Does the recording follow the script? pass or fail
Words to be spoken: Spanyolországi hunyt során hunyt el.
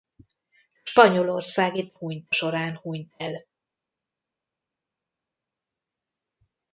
pass